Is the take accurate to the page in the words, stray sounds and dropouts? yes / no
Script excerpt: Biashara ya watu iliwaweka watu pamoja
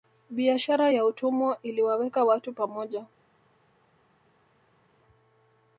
no